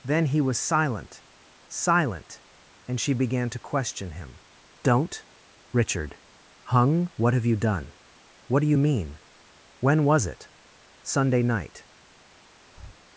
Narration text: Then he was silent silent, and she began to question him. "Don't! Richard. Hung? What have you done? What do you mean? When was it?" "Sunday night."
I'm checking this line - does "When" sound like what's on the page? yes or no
yes